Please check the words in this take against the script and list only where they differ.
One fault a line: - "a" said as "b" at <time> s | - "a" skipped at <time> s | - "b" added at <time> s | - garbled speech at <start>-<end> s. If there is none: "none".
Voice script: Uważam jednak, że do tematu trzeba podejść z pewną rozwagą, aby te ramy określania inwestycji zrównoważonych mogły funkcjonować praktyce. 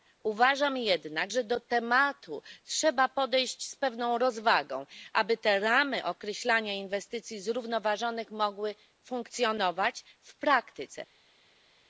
- "w" added at 10.2 s